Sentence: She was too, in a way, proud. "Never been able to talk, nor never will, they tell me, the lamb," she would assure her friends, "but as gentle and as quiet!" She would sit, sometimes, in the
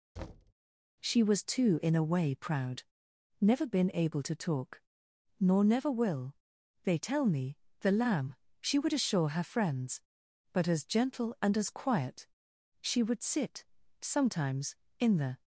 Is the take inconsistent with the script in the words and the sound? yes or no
yes